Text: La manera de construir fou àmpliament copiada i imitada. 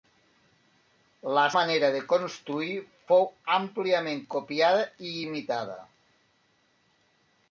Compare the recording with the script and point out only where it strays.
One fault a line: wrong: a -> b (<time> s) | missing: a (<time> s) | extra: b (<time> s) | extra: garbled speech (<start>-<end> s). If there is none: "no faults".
no faults